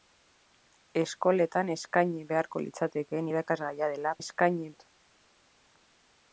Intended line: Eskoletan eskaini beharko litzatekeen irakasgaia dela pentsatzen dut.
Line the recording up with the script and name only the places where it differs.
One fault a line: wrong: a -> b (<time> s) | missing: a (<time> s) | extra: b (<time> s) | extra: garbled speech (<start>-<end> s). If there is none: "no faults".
wrong: pentsatzen -> eskaini (4.2 s)